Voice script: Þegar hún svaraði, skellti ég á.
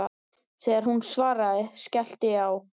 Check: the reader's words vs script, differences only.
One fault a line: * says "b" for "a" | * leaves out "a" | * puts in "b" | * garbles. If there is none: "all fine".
all fine